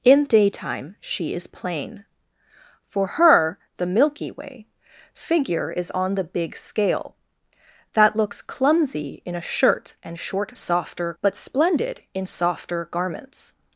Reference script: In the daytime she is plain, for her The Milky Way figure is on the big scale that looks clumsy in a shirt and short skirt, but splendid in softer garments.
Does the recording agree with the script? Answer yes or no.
no